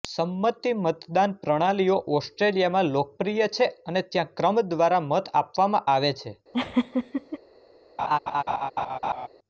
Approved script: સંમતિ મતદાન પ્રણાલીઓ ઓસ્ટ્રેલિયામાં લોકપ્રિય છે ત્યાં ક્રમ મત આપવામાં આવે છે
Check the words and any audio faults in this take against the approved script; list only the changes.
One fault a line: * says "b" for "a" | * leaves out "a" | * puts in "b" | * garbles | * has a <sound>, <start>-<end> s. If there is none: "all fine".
* puts in "અને"
* puts in "દ્વારા"
* has a laugh, 6.5-7.4 s
* has a laugh, 8.0-9.3 s